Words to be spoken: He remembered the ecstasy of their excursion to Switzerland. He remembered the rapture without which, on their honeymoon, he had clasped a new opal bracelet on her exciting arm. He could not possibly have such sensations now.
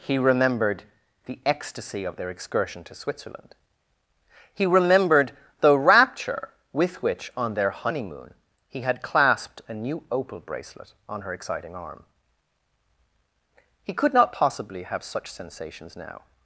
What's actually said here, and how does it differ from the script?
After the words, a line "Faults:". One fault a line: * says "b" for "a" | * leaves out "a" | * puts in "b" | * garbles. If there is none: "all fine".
He remembered the ecstasy of their excursion to Switzerland. He remembered the rapture with which, on their honeymoon, he had clasped a new opal bracelet on her exciting arm. He could not possibly have such sensations now.
Faults:
* says "with" for "without"